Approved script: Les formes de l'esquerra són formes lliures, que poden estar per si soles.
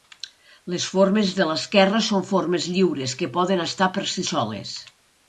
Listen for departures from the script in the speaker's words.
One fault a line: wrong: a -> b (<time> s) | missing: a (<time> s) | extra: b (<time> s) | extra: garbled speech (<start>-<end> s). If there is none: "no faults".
no faults